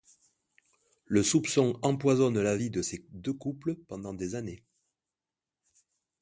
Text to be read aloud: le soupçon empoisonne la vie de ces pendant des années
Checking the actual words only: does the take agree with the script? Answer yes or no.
no